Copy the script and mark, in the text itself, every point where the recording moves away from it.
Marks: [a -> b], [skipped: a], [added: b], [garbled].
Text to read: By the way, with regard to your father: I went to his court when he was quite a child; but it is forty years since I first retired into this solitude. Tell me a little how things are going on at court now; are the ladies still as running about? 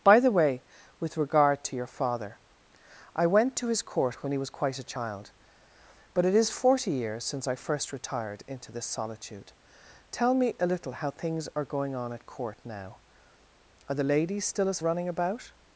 By the way, with regard to your father: I went to his court when he was quite a child; but it is forty years since I first retired into this solitude. Tell me a little how things are going on at court now; are the ladies still as running about?